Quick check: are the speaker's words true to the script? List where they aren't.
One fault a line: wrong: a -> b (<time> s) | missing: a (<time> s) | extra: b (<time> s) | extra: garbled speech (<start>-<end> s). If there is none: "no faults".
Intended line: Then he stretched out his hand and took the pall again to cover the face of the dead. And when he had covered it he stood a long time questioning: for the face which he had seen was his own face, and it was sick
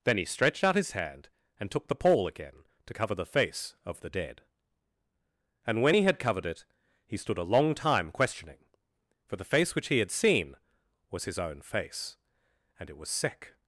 no faults